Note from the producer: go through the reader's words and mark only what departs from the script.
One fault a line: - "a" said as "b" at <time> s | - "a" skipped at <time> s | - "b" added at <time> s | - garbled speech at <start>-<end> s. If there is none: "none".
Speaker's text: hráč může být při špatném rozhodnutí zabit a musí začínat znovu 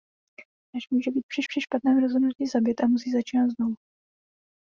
- "při" added at 1.5 s